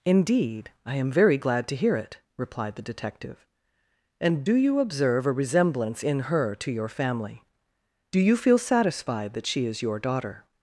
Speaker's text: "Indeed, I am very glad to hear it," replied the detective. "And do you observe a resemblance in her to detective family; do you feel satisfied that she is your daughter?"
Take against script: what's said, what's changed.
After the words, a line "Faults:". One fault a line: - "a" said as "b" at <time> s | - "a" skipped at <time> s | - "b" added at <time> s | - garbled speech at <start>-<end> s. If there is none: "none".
"Indeed, I am very glad to hear it," replied the detective. "And do you observe a resemblance in her to your family; do you feel satisfied that she is your daughter?"
Faults:
- "detective" said as "your" at 6.7 s